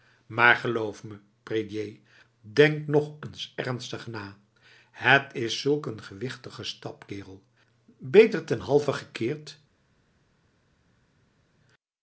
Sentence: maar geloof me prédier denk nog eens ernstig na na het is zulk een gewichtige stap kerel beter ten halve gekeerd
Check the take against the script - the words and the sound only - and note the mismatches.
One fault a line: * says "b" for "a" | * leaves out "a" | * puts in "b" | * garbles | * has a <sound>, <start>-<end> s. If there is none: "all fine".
* leaves out "na"